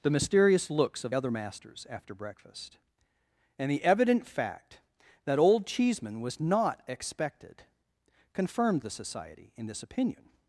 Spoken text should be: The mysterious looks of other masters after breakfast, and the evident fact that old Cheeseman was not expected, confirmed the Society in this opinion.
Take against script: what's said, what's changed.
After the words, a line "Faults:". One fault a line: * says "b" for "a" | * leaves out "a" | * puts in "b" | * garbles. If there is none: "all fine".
The mysterious looks of other masters after breakfast, and the evident fact that old Cheeseman was not expected, confirmed the Society in this opinion.
Faults:
all fine